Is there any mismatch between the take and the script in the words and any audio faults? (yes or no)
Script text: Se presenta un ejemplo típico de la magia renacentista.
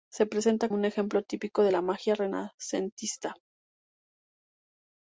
no